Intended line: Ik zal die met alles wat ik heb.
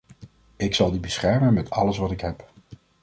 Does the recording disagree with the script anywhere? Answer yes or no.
yes